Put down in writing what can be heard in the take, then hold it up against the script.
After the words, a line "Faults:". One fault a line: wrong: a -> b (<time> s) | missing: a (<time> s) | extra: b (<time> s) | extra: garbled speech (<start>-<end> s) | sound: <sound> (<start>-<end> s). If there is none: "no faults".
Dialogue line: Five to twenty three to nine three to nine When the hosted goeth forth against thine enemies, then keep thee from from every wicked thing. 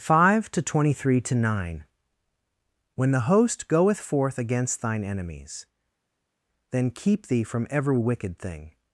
Five to twenty three to nine When the host goeth forth against thine enemies, then keep thee from every wicked thing.
Faults:
missing: three to nine (1.9 s)
wrong: hosted -> host (3.3 s)
missing: from (7.7 s)